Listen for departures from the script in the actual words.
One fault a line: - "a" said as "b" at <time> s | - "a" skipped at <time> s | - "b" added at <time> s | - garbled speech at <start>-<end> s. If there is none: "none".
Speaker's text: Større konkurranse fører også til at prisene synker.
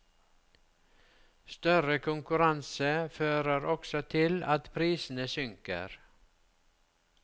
none